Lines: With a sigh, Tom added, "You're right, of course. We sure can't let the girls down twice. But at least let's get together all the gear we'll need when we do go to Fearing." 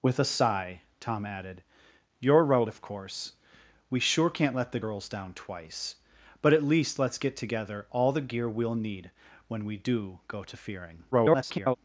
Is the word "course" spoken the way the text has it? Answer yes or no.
yes